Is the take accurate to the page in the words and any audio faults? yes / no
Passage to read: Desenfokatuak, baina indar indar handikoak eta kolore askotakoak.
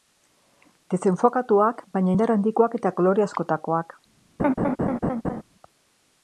no